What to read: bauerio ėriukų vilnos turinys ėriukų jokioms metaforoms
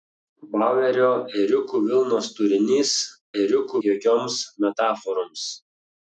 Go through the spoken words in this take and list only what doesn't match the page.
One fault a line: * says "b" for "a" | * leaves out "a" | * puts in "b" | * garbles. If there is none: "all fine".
all fine